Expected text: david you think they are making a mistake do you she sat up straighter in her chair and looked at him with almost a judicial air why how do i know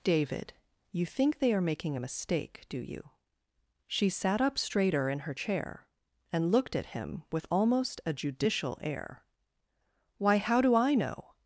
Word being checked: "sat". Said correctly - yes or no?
yes